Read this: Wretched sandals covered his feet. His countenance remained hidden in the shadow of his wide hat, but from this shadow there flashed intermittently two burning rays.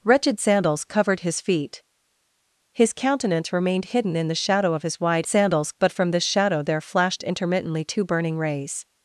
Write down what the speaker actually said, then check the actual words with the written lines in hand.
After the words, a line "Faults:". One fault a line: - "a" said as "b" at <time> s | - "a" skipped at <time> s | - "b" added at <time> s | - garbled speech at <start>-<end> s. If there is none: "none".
Wretched sandals covered his feet. His countenance remained hidden in the shadow of his wide sandals, but from this shadow there flashed intermittently two burning rays.
Faults:
- "hat" said as "sandals" at 5.3 s